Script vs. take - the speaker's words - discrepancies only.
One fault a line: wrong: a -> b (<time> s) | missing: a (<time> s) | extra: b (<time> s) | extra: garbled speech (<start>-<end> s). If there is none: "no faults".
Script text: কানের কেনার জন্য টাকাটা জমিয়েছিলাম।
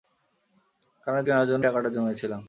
no faults